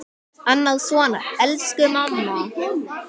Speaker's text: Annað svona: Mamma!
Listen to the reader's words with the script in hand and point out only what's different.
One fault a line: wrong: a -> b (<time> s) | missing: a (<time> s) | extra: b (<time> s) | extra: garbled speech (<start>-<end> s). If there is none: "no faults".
extra: Elsku (1.5 s)